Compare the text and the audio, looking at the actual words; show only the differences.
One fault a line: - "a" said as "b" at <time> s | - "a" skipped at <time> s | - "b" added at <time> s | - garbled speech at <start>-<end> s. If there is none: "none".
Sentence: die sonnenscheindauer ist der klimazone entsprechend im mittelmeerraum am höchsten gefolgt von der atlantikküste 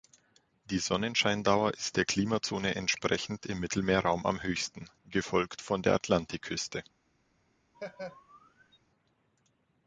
none